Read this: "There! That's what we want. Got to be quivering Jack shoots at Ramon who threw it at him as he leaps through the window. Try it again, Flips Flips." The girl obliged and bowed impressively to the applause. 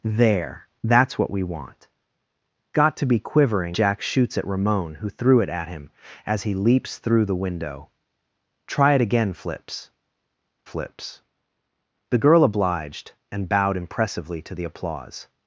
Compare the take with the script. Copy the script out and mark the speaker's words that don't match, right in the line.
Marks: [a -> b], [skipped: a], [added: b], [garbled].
"There! That's what we want. Got to be quivering Jack shoots at Ramon who threw it at him as he leaps through the window. Try it again, Flips Flips." The girl obliged and bowed impressively to the applause.